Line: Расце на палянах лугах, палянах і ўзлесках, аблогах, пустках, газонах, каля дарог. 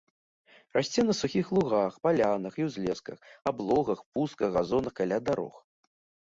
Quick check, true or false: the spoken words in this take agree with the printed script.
false